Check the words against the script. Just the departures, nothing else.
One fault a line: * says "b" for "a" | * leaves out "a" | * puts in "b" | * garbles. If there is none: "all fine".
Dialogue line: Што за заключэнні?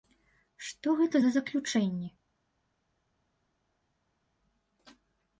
* puts in "гэта"